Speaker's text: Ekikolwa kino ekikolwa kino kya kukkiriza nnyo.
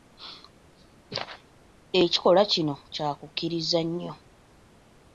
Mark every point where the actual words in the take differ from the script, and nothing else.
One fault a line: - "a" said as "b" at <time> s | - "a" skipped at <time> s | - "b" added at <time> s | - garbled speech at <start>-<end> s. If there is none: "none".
- "ekikolwa kino" skipped at 2.8 s